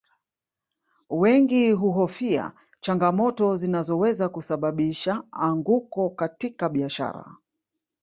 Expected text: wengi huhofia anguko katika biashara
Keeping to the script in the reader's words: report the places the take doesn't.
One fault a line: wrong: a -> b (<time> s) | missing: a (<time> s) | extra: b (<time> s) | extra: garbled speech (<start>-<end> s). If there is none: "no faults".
extra: changamoto zinazoweza kusababisha (2.8 s)